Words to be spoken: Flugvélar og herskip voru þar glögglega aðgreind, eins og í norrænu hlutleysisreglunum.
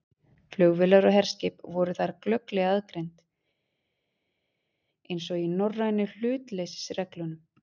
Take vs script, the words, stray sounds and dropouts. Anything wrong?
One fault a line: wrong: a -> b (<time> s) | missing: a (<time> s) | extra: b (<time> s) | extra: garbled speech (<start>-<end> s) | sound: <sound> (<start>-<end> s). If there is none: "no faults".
no faults